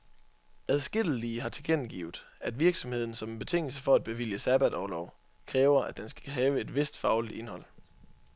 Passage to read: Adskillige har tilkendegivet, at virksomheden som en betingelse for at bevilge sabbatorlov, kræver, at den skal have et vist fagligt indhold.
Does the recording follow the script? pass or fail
pass